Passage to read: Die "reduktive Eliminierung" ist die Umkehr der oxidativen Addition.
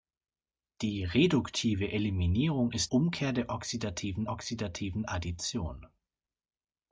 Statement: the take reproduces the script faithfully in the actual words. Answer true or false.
false